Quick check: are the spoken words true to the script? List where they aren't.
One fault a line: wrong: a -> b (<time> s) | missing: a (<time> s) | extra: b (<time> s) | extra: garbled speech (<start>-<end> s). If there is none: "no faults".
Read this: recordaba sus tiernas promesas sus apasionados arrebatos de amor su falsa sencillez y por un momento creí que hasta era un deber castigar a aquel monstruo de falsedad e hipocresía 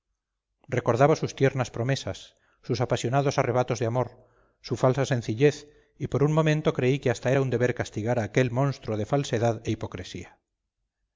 no faults